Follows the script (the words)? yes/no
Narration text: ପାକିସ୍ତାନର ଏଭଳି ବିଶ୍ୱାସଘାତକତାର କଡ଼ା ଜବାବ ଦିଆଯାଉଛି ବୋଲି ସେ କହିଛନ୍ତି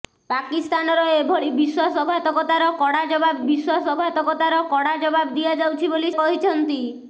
no